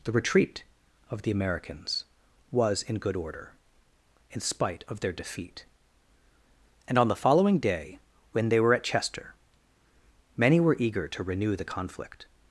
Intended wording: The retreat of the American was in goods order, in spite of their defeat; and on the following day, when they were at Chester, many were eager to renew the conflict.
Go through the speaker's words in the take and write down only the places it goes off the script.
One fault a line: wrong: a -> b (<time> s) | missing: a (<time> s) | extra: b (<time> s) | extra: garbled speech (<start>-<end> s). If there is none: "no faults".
wrong: American -> Americans (1.3 s)
wrong: goods -> good (3.0 s)